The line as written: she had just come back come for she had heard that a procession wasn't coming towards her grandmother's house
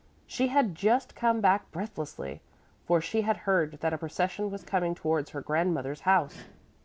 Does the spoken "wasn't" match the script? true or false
false